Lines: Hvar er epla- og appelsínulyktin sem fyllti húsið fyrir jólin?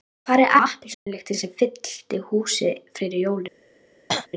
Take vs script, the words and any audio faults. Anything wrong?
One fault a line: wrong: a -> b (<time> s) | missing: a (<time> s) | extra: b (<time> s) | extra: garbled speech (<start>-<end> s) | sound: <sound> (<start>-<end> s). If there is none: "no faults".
missing: epla (0.5 s)
sound: dropout (0.9-1.1 s)
sound: throat clearing (4.1-4.3 s)